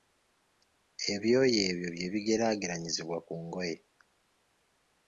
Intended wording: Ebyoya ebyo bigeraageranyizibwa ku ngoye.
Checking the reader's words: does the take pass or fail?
fail